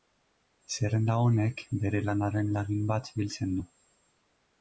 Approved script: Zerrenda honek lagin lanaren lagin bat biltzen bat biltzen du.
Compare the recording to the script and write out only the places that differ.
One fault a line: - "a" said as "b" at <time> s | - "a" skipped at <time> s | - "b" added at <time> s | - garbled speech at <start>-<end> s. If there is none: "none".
- "lagin" said as "bere" at 1.8 s
- "bat biltzen" skipped at 3.5 s